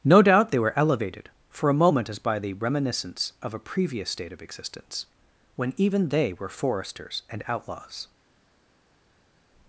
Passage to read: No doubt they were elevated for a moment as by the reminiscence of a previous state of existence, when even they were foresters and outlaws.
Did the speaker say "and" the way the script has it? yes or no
yes